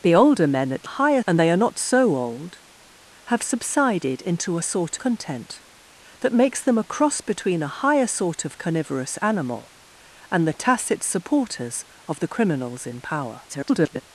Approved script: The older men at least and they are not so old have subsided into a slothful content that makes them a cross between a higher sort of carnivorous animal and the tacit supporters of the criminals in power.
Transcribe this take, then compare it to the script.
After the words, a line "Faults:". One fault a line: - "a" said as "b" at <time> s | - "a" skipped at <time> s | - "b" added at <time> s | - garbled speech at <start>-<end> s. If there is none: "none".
The older men at higher and they are not so old have subsided into a sort content that makes them a cross between a higher sort of carnivorous animal and the tacit supporters of the criminals in power. [garbled]
Faults:
- "least" said as "higher" at 0.8 s
- "slothful" said as "sort" at 4.6 s
- garbled speech at 13.5-14.0 s